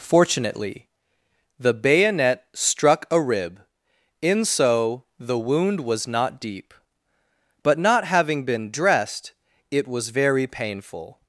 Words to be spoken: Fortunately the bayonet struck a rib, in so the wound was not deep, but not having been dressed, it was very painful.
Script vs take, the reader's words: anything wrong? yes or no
no